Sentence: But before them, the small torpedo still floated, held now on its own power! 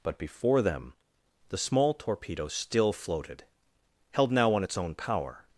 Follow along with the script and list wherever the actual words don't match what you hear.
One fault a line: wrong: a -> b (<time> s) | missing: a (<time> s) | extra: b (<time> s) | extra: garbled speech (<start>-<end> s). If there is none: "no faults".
no faults